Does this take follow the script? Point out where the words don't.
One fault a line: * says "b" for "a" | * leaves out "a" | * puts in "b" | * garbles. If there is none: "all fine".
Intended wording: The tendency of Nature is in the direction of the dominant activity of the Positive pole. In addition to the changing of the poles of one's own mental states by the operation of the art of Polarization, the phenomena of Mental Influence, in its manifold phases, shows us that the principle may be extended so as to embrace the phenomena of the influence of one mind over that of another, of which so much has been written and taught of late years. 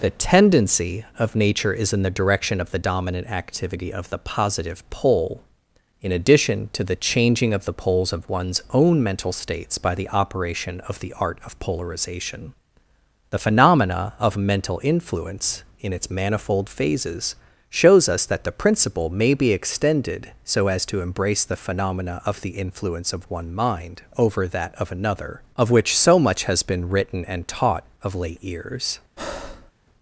all fine